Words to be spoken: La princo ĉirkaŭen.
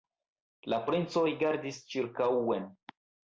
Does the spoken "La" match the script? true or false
true